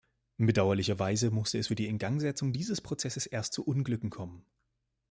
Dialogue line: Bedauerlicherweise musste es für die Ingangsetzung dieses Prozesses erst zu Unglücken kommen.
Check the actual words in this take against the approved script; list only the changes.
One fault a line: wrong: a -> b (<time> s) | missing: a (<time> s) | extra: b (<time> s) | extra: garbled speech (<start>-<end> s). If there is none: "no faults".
no faults